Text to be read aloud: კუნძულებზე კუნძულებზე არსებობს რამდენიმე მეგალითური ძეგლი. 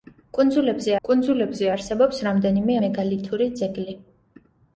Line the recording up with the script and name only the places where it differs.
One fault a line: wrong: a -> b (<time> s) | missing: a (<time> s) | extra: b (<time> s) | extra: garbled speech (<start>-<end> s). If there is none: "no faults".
no faults